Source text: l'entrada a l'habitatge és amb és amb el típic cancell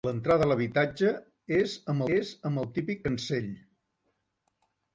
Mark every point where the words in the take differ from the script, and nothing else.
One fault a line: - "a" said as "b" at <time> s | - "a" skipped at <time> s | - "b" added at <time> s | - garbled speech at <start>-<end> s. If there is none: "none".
none